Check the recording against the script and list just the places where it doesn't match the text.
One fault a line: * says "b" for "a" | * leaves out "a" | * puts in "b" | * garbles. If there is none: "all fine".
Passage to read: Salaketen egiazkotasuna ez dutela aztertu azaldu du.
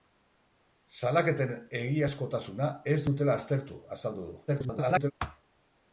* garbles